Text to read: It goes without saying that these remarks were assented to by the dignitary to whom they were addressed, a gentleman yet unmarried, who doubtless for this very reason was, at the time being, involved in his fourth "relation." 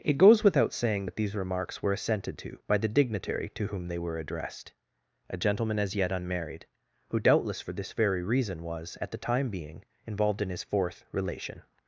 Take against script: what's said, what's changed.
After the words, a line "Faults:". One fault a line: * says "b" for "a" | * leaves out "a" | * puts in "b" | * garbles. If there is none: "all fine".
It goes without saying that these remarks were assented to by the dignitary to whom they were addressed, a gentleman as yet unmarried, who doubtless for this very reason was, at the time being, involved in his fourth "relation."
Faults:
* puts in "as"